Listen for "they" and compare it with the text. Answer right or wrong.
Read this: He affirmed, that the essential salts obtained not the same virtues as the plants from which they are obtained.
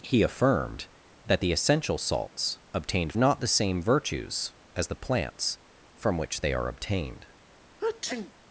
right